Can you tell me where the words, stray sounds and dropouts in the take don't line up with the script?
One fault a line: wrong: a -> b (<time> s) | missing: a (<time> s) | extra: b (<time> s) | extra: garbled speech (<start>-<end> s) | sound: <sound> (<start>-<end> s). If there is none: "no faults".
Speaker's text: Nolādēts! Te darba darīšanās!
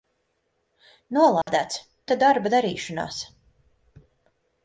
sound: dropout (1.4-1.5 s)